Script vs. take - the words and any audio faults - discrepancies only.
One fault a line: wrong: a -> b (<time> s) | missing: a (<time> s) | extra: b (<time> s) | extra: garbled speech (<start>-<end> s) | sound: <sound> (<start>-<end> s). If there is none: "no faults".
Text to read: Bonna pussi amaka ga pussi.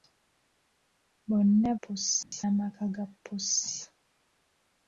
sound: dropout (2.2-2.3 s)